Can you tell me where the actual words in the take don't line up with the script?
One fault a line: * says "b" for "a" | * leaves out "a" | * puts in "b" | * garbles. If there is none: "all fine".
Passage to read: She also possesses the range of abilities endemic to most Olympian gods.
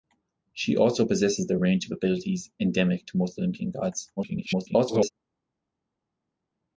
* garbles